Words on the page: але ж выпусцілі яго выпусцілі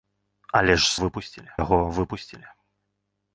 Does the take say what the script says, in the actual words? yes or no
yes